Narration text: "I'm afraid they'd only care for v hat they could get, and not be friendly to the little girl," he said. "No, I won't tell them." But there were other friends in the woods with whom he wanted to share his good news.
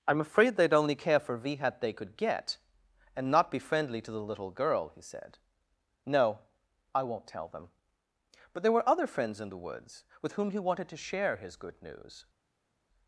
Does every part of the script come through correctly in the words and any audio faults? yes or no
yes